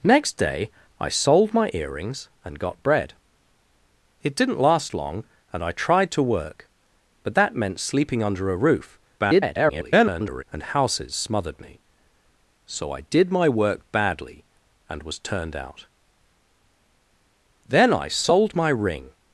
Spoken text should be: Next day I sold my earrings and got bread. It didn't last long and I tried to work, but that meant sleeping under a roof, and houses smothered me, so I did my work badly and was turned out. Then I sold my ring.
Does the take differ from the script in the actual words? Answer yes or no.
yes